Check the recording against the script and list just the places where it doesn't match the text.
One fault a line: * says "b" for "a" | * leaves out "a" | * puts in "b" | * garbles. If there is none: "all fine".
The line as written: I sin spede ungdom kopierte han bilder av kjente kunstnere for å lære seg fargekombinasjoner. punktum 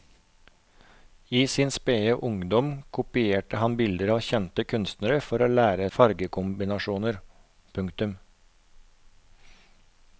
* leaves out "seg"